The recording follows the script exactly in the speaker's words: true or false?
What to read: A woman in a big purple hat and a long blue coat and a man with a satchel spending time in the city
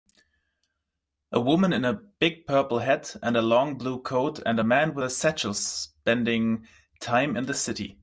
true